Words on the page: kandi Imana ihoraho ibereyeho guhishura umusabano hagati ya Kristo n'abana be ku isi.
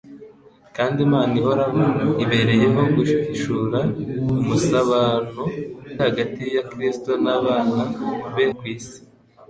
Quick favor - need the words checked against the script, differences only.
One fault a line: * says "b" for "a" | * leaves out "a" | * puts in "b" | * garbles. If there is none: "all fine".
all fine